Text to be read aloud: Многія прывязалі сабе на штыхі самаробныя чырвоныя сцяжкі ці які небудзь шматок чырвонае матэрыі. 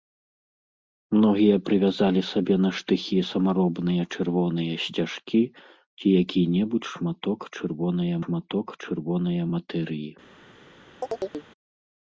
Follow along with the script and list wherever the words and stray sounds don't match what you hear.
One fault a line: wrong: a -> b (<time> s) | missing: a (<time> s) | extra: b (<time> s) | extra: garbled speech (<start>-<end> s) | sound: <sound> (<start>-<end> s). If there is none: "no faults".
extra: шматок чырвонае (8.2 s)
sound: chirp (11.0-11.5 s)